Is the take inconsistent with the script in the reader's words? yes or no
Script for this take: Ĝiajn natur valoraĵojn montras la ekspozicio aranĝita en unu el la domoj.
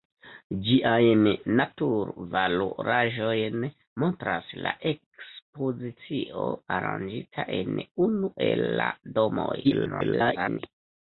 yes